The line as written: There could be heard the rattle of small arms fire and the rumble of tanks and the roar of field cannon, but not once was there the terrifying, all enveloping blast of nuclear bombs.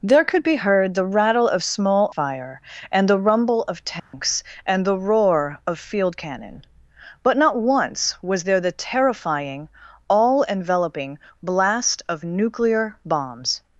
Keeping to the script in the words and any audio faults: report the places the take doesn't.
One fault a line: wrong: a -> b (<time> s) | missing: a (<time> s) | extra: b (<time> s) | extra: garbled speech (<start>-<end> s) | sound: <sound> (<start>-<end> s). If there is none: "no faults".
missing: arms (2.1 s)
sound: dropout (4.0-4.1 s)